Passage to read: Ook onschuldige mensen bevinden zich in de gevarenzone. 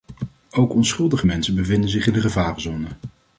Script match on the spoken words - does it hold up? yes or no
yes